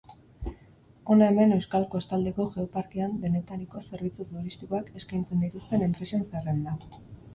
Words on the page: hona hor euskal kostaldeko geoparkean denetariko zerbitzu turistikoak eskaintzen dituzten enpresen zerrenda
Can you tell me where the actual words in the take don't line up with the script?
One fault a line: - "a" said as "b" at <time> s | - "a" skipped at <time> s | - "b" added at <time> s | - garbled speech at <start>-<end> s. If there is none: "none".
- "hor" said as "hemen" at 1.3 s